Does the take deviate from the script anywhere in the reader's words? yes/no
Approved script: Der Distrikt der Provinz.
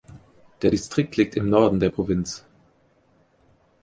yes